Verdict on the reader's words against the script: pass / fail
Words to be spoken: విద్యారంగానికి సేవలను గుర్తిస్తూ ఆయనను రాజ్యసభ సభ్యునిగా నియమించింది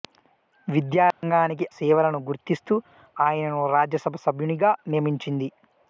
pass